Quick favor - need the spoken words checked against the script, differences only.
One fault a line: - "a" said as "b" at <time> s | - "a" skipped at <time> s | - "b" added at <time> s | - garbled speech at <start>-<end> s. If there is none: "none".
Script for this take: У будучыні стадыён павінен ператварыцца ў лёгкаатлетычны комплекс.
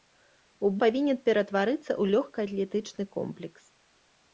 - "будучыні стадыён" skipped at 0.7 s